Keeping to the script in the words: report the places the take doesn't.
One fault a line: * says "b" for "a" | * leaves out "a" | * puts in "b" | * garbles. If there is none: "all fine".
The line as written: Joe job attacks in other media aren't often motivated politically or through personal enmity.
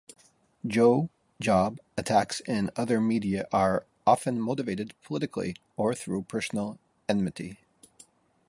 * says "are" for "aren't"